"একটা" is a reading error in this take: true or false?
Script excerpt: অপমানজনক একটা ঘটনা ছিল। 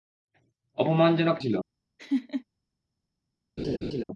true